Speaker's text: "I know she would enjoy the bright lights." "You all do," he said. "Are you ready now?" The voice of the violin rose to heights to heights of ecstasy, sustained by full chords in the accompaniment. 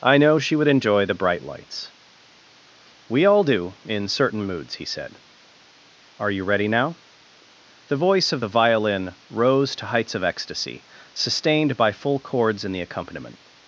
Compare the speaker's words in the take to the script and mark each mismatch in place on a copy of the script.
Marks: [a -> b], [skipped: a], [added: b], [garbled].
"I know she would enjoy the bright lights." ["You -> We] all do," [added: in certain moods] he said. "Are you ready now?" The voice of the violin rose to heights [skipped: to heights] of ecstasy, sustained by full chords in the accompaniment.